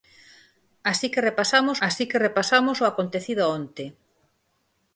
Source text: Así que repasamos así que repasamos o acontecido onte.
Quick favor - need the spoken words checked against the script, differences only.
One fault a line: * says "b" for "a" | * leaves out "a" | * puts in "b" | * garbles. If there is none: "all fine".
all fine